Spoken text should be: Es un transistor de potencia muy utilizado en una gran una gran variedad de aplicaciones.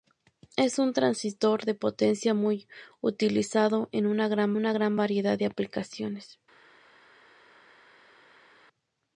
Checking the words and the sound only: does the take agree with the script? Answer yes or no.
yes